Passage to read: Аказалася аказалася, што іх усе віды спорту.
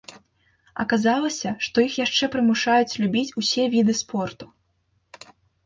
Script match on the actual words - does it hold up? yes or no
no